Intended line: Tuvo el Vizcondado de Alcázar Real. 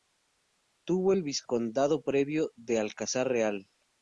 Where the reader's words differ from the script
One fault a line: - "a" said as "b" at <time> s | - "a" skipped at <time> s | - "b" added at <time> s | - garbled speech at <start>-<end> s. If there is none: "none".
- "previo" added at 2.0 s